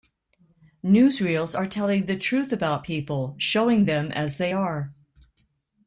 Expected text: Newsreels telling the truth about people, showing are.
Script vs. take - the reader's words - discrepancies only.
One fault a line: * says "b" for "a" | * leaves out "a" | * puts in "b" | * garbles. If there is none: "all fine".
* puts in "are"
* puts in "them as they"